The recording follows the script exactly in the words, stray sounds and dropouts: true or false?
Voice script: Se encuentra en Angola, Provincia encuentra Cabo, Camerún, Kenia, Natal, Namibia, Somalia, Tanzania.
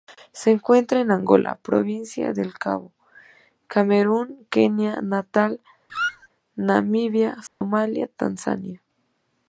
false